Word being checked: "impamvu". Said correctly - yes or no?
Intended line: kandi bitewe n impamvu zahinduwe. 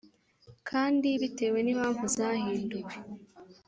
yes